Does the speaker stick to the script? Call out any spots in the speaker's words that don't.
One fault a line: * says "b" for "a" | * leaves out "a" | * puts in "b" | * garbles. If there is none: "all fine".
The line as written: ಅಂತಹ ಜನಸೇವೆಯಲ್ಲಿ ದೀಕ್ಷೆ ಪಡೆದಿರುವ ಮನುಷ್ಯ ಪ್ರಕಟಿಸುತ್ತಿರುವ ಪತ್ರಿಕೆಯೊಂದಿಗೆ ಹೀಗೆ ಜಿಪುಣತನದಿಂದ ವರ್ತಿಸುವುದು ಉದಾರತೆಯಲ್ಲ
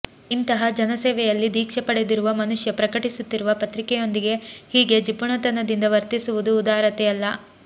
* says "ಇಂತಹ" for "ಅಂತಹ"